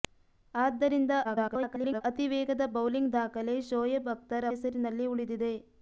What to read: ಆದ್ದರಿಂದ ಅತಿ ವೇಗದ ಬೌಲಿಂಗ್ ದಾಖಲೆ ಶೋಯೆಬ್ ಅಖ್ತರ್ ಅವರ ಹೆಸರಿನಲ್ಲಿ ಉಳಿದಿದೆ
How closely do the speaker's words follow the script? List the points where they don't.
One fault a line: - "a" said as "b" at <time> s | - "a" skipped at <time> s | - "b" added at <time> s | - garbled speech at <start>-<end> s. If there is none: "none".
- garbled speech at 1.2-2.0 s
- "ಅವರ" skipped at 4.5 s